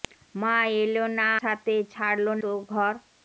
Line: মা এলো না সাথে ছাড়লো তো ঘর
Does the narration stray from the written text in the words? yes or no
no